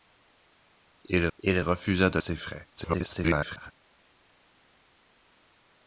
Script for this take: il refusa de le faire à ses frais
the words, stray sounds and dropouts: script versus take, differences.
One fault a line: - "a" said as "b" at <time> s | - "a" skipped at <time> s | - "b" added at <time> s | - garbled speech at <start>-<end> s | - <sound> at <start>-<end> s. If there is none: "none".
- "il" added at 1.4 s
- "le faire à" skipped at 2.2 s
- garbled speech at 2.8-3.7 s